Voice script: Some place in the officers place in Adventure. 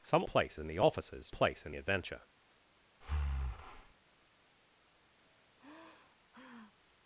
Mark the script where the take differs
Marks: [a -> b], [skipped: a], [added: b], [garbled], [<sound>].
Some place in the officers place in Adventure. [breath] [sigh]